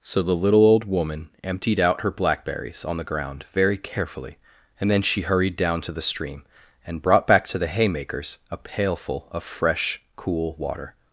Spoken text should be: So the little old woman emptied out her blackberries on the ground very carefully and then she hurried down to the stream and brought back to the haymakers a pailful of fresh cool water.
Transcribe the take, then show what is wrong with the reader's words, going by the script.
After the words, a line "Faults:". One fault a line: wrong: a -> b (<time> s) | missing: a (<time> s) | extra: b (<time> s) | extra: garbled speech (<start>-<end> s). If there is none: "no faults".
So the little old woman emptied out her blackberries on the ground very carefully and then she hurried down to the stream and brought back to the haymakers a pailful of fresh cool water.
Faults:
no faults